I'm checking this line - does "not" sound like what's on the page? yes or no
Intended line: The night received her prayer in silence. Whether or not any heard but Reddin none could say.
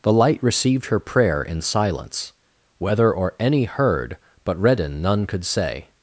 no